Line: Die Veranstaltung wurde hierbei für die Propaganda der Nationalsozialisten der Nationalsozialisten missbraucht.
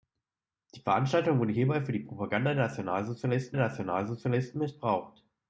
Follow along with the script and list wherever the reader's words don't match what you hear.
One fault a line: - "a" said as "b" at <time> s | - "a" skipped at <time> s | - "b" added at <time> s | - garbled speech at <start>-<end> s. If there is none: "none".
none